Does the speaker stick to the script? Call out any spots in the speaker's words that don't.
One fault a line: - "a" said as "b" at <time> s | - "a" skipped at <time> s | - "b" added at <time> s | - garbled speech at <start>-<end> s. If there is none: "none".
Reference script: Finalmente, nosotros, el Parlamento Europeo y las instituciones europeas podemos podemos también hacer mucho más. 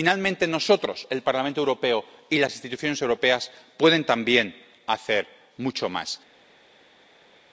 - "podemos" skipped at 4.1 s